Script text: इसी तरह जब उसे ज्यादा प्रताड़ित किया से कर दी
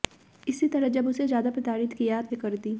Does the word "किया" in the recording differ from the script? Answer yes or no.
no